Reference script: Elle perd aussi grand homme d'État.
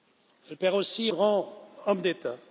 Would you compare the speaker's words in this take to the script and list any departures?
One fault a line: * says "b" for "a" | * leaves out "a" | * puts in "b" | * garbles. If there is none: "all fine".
all fine